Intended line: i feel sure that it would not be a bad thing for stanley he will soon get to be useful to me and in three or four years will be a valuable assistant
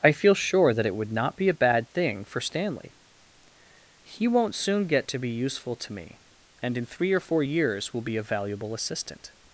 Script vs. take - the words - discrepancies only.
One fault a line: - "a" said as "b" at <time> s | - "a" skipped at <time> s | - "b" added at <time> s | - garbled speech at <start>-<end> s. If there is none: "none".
- "will" said as "won't" at 4.3 s